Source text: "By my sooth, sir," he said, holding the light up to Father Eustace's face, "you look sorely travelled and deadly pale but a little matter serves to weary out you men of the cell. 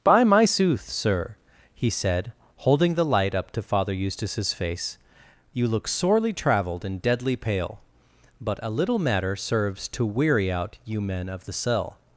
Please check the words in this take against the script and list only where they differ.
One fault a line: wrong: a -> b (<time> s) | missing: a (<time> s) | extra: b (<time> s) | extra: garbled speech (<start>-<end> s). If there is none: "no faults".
no faults